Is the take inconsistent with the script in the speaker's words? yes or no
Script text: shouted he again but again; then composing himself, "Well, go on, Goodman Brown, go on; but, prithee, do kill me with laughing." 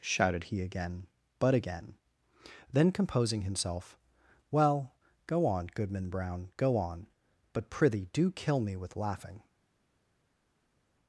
no